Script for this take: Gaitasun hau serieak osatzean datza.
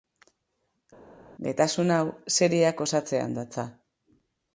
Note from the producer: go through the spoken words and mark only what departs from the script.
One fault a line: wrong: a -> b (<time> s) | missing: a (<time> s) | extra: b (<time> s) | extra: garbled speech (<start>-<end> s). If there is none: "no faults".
no faults